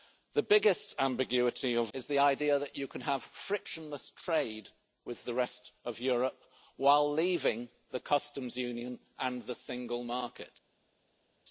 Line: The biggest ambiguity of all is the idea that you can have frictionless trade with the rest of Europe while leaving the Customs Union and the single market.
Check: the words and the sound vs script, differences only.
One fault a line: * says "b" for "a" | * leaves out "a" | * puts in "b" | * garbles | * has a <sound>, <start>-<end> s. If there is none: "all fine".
* leaves out "all"